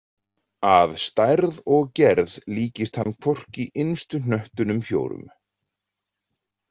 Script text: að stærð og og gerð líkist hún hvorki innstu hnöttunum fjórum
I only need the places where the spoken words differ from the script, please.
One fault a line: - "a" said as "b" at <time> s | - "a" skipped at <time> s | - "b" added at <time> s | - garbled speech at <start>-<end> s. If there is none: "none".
- "og" skipped at 1.9 s
- "hún" said as "hann" at 3.0 s